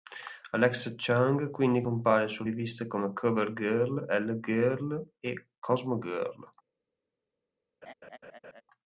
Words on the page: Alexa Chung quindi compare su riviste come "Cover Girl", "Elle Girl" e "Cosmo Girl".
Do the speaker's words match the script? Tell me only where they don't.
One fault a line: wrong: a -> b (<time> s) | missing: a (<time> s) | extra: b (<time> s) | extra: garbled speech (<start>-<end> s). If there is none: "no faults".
no faults